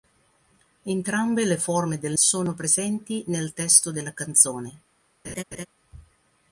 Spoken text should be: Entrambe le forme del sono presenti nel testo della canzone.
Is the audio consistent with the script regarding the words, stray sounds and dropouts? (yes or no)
no